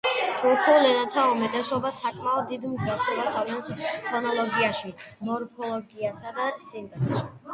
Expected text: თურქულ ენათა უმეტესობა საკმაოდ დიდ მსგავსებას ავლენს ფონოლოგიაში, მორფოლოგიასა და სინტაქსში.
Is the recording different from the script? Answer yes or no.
no